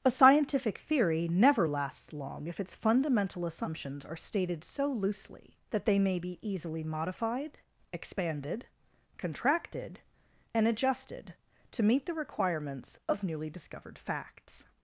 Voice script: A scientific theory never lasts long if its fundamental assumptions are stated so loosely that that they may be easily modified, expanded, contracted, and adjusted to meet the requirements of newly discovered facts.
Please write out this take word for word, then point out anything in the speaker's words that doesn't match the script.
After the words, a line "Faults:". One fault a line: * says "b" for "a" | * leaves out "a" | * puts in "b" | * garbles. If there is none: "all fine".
A scientific theory never lasts long if its fundamental assumptions are stated so loosely that they may be easily modified, expanded, contracted, and adjusted to meet the requirements of newly discovered facts.
Faults:
* leaves out "that"